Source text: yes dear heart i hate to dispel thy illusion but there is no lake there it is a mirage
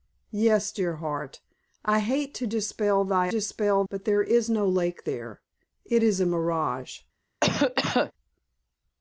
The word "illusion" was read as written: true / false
false